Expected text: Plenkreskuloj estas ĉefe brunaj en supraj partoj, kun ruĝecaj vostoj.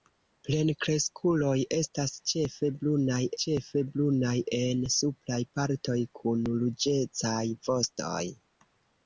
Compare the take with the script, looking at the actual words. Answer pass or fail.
fail